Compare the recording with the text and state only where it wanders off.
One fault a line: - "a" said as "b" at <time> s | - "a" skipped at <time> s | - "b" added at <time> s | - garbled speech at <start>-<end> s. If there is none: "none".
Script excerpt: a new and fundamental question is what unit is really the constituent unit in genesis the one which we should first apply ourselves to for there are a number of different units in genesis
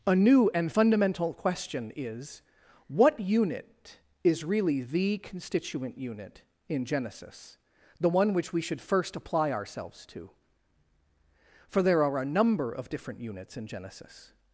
none